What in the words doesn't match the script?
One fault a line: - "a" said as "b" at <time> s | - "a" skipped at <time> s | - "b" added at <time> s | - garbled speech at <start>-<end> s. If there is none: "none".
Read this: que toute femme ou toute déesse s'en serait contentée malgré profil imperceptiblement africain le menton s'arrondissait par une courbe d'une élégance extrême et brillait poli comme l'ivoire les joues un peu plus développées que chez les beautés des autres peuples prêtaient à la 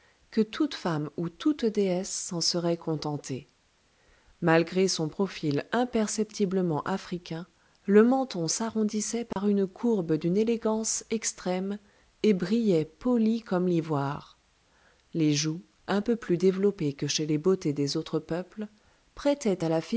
- "son" added at 4.9 s